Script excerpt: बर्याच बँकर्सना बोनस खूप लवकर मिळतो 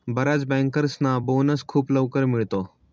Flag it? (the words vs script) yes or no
no